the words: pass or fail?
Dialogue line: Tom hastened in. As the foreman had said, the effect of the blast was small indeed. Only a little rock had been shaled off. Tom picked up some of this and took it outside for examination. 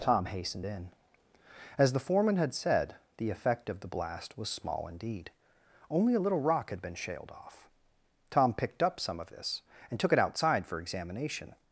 pass